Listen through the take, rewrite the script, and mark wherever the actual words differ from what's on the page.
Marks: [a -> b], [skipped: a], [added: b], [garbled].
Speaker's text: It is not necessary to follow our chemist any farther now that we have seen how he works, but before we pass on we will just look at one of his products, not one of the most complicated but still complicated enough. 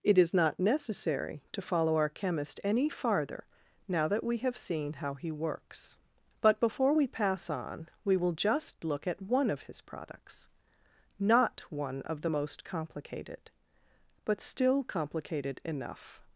It is not necessary to follow our chemist any farther now that we have seen how he works, but before we pass on we will just look at one of his products, not one of the most complicated but still complicated enough.